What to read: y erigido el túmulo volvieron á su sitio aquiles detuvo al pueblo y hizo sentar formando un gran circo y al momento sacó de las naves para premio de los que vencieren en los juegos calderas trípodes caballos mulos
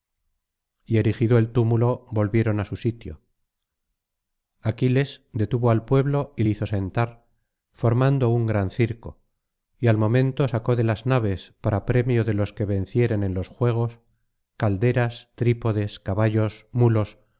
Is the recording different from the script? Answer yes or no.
no